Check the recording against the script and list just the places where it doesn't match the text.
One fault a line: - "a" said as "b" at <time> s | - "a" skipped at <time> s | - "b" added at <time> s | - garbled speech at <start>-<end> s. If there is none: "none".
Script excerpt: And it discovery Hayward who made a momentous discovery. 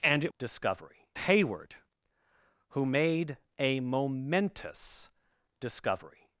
none